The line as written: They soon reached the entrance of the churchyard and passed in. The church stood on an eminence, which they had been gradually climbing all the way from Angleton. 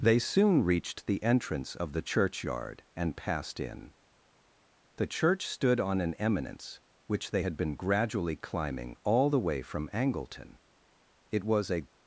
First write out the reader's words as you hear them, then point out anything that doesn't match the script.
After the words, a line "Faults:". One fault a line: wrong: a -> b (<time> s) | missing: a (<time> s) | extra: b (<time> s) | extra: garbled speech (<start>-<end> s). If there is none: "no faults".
They soon reached the entrance of the churchyard and passed in. The church stood on an eminence, which they had been gradually climbing all the way from Angleton. It was a
Faults:
extra: It was a (11.3 s)